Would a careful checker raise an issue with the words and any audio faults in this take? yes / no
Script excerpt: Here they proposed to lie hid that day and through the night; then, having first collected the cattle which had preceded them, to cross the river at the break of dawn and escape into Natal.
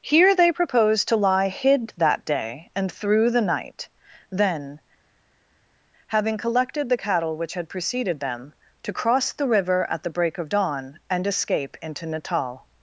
yes